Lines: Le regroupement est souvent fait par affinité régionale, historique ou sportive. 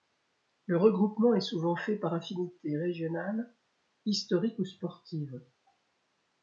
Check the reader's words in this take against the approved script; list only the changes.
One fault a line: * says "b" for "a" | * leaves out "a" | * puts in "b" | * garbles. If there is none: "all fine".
all fine